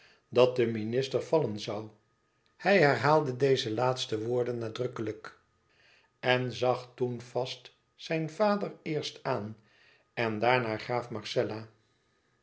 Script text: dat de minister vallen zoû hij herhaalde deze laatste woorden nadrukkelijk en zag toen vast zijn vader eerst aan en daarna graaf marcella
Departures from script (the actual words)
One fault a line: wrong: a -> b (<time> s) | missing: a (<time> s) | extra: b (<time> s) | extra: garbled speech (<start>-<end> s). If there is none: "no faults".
no faults